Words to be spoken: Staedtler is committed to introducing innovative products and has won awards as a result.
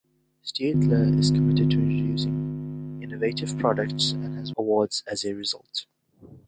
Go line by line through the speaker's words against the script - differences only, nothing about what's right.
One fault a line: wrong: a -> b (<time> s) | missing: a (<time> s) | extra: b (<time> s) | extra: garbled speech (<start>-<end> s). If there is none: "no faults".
missing: won (4.5 s)